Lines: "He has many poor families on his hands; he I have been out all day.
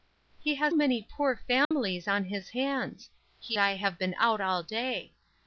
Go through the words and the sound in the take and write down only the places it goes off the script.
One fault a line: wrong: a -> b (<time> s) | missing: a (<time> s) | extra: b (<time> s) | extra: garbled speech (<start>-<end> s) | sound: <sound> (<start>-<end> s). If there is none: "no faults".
sound: dropout (1.6-1.7 s)